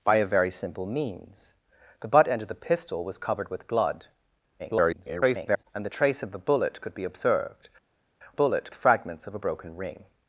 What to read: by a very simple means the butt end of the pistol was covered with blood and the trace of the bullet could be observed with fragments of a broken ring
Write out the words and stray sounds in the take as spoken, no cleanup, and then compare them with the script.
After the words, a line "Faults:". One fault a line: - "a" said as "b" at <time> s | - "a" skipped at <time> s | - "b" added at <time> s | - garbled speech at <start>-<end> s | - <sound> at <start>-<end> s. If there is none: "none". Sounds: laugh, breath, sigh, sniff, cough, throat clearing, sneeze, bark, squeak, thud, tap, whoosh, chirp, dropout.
by a very simple means the butt end of the pistol was covered with blood [garbled] and the trace of the bullet could be observed bullet fragments of a broken ring
Faults:
- garbled speech at 4.6-5.6 s
- "with" said as "bullet" at 8.3 s